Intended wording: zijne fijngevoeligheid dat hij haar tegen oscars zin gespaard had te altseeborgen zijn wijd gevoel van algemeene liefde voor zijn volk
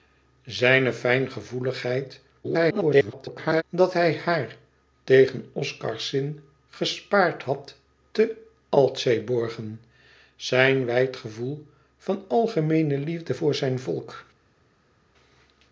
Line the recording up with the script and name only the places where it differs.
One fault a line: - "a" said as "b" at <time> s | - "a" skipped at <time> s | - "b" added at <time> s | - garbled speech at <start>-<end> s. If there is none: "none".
- garbled speech at 2.4-3.6 s